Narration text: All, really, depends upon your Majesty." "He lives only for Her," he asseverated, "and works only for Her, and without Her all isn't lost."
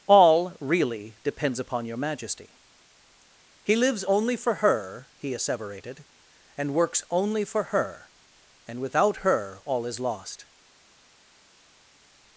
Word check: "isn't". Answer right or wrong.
wrong